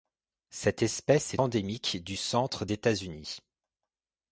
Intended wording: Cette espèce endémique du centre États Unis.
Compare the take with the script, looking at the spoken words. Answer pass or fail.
pass